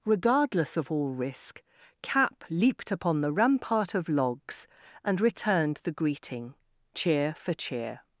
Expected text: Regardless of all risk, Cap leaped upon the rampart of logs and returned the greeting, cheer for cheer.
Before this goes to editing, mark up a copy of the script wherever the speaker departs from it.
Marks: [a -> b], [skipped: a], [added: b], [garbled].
Regardless of all risk, Cap leaped upon the rampart of logs and returned the greeting, cheer for cheer.